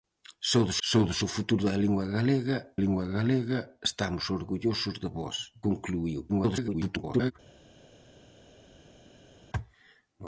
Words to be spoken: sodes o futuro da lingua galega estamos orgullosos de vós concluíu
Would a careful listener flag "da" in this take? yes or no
no